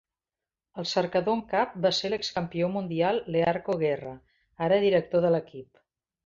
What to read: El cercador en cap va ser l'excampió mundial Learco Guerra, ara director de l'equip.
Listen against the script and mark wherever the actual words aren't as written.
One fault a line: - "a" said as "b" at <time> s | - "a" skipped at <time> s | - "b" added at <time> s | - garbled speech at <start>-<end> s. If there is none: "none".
none